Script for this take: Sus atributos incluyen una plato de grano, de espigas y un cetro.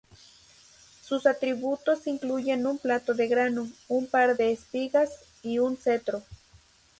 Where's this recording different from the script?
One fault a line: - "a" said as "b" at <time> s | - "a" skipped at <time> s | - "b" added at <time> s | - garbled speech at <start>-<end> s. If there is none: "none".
- "una" said as "un" at 2.6 s
- "un par" added at 3.9 s